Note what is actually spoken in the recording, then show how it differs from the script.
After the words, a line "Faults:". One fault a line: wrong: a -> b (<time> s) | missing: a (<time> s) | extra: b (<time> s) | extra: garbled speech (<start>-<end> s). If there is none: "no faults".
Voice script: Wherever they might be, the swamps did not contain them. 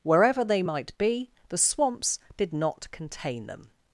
Wherever they might be, the swamps did not contain them.
Faults:
no faults